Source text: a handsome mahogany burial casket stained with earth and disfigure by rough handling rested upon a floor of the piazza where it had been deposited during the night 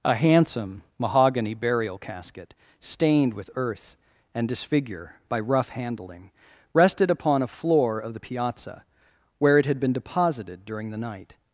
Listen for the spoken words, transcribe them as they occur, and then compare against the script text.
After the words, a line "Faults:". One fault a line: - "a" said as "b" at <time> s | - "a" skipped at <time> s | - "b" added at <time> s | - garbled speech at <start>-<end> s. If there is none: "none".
a handsome mahogany burial casket stained with earth and disfigure by rough handling rested upon a floor of the piazza where it had been deposited during the night
Faults:
none